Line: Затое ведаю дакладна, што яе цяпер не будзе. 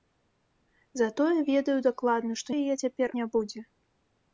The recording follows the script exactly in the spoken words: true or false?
true